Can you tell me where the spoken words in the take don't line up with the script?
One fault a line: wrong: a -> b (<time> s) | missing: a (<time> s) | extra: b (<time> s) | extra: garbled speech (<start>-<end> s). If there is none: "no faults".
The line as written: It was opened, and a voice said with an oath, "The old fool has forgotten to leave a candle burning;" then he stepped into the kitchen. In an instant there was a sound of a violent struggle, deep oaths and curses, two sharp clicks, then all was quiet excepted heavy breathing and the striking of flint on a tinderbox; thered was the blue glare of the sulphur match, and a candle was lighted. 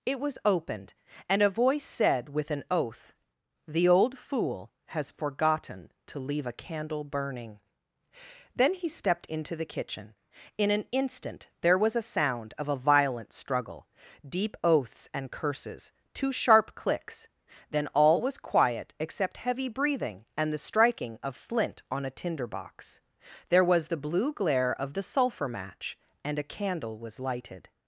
wrong: excepted -> except (19.0 s)
wrong: thered -> there (23.5 s)